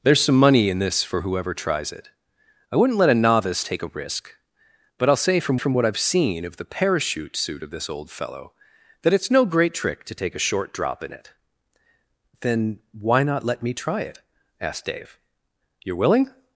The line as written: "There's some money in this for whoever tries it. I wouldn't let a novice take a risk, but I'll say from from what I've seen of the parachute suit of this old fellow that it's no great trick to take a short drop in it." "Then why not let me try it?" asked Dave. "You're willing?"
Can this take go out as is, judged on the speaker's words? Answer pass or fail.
pass